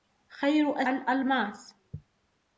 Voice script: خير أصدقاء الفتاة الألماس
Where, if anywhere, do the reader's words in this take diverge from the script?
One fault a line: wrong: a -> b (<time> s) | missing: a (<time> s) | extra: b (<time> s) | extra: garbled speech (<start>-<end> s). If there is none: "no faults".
missing: أصدقاء الفتاة (0.8 s)